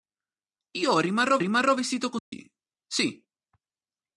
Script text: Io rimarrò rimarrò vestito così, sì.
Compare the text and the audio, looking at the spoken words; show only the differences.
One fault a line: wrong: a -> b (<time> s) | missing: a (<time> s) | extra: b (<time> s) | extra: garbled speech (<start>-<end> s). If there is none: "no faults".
no faults